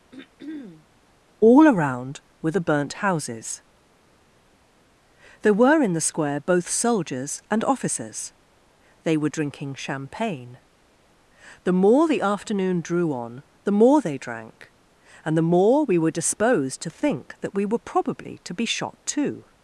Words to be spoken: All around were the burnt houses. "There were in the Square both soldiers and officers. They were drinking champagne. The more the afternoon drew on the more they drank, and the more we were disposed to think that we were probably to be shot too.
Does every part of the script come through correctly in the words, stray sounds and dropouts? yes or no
no